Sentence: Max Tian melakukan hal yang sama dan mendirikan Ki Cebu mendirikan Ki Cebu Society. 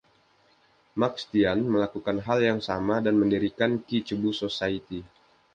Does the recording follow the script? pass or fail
fail